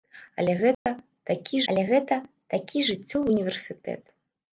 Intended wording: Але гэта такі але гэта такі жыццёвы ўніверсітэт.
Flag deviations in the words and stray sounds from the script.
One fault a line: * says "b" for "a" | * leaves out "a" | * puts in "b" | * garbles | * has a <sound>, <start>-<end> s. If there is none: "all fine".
* has a dropout, 0.7-0.9 s